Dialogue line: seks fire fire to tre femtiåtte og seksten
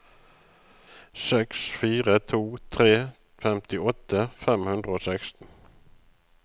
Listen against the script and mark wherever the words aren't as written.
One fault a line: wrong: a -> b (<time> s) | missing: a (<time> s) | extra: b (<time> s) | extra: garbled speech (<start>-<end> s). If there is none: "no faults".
missing: fire (2.1 s)
extra: fem hundre (4.4 s)